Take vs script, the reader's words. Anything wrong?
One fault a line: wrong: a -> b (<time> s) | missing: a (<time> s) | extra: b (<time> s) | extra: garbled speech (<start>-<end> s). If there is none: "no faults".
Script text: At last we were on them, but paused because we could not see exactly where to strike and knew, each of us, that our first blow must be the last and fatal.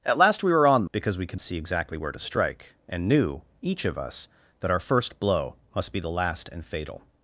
missing: them but paused (0.9 s)
missing: not (1.4 s)